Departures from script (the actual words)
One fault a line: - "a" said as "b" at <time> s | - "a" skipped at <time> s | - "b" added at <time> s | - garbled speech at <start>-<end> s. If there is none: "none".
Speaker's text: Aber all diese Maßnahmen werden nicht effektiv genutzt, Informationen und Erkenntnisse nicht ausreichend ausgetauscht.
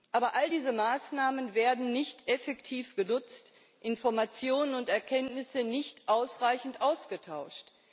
none